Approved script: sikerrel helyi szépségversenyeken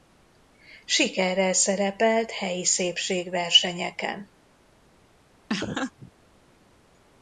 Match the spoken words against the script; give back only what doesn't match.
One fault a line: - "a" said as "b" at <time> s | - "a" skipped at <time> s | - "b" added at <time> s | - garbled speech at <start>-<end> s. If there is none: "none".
- "szerepelt" added at 1.5 s